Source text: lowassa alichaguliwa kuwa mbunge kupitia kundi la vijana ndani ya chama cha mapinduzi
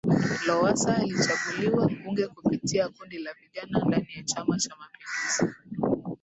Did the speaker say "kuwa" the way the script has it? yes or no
no